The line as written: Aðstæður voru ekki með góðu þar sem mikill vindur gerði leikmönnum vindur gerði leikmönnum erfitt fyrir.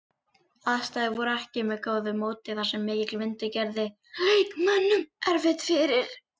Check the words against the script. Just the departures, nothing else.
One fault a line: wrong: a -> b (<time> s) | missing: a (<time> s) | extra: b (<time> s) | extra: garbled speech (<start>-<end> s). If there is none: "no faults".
extra: móti (2.2 s)
missing: vindur gerði leikmönnum (5.1 s)